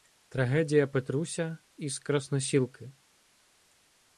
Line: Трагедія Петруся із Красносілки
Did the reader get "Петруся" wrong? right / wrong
right